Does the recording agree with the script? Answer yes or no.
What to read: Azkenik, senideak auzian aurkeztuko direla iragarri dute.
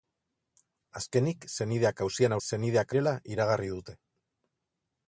no